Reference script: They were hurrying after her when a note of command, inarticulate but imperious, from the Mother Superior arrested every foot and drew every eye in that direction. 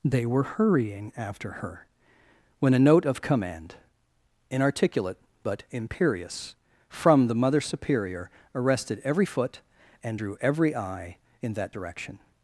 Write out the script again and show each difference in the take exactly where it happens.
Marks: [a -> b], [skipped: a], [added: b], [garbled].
They were hurrying after her when a note of command, inarticulate but imperious, from the Mother Superior arrested every foot and drew every eye in that direction.